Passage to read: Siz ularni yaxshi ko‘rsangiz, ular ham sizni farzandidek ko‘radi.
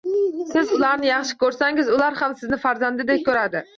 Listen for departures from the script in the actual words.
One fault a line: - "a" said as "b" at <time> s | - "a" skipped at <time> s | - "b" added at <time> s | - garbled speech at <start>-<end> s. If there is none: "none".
none